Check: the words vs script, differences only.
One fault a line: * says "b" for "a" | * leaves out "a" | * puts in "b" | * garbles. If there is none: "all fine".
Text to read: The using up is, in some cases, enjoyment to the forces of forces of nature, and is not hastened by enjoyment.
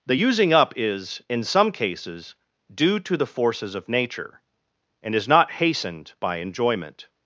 * says "due" for "enjoyment"
* leaves out "forces of"